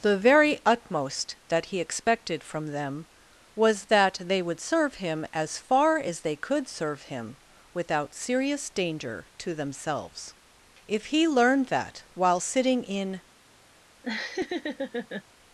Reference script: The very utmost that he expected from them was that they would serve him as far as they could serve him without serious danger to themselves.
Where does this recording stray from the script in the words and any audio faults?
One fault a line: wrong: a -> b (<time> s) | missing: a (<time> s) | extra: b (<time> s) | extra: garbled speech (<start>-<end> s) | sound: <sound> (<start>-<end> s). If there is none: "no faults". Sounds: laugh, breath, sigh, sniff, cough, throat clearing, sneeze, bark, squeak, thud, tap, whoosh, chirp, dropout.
extra: If he learned that while sitting in (10.9 s)
sound: laugh (14.0-15.2 s)